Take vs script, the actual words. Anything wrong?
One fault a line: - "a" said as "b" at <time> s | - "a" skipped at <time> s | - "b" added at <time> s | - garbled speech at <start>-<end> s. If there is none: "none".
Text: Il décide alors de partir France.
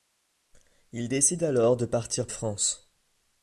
none